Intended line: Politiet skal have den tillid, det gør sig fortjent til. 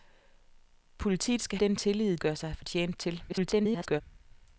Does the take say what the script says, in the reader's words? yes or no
no